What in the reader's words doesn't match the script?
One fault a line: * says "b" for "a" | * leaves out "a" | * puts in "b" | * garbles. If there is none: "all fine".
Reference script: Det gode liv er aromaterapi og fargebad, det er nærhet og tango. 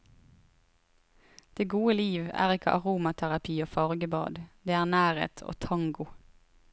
* puts in "ikke"